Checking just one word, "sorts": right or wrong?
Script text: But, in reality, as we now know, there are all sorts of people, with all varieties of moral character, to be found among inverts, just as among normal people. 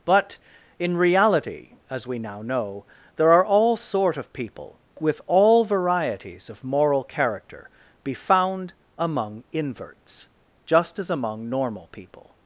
wrong